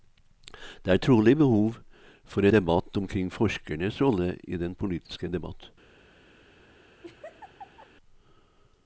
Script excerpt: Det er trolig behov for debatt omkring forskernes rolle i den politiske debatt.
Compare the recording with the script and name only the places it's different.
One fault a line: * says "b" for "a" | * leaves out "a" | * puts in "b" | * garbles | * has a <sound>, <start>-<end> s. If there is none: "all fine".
* has a laugh, 7.0-7.9 s